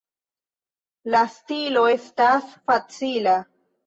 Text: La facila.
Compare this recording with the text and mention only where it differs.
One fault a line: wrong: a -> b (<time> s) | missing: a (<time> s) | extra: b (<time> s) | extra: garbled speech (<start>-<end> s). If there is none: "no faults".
extra: stilo estas (1.3 s)